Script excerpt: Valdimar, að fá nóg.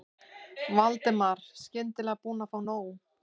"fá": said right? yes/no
yes